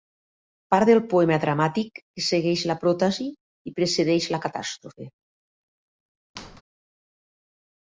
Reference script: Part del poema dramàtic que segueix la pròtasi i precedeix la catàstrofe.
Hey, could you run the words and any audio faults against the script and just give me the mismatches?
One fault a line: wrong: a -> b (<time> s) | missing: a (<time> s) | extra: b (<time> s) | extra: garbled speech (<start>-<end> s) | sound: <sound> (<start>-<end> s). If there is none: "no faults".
sound: squeak (6.4-6.6 s)